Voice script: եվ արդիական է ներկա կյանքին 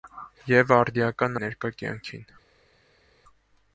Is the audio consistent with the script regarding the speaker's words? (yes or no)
yes